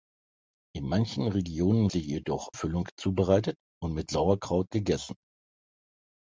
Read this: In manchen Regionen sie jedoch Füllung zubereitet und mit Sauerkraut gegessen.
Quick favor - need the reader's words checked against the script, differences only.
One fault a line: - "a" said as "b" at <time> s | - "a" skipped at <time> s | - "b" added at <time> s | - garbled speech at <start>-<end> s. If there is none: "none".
none